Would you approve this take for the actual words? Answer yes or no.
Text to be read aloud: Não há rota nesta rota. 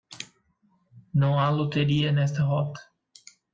no